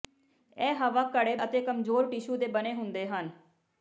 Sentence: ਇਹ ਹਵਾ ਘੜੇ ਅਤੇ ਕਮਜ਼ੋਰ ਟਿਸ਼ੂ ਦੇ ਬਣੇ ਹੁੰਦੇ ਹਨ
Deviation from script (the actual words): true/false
false